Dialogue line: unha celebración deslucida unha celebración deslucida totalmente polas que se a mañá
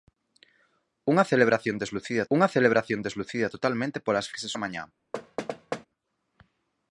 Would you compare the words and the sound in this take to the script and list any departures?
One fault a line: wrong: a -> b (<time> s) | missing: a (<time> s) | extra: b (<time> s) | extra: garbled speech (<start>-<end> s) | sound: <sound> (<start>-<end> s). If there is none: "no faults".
sound: thud (5.1-5.9 s)